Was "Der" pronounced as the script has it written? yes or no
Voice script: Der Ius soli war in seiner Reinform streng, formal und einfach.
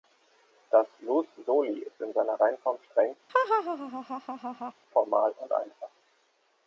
no